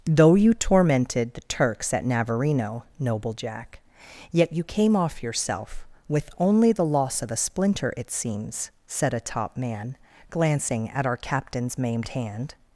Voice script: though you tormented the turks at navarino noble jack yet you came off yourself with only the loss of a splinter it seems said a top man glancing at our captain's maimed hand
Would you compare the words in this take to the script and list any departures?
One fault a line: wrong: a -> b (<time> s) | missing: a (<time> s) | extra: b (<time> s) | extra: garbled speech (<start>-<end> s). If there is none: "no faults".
no faults